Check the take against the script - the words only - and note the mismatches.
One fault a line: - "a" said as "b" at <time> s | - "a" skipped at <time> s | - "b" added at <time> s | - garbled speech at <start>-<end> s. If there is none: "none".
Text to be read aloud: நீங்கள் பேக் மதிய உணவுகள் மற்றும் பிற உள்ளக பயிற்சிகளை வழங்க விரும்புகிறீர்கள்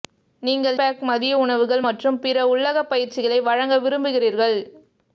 none